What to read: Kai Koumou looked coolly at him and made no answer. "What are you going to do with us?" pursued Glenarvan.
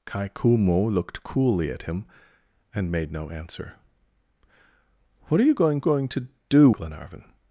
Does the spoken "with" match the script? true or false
false